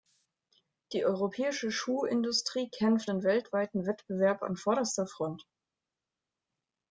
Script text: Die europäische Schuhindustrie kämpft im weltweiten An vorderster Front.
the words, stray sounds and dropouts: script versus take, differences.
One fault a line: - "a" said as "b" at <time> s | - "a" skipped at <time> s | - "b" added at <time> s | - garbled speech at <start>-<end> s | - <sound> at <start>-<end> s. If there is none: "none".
- "Wettbewerb" added at 3.8 s